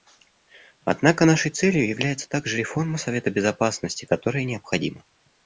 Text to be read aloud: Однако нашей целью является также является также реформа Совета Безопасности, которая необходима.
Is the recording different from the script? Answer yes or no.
yes